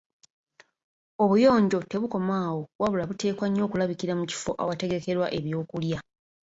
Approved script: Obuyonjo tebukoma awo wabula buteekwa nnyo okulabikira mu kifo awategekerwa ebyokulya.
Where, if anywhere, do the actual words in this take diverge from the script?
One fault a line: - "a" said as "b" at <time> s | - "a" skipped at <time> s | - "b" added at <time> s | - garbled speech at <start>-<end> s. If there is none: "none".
none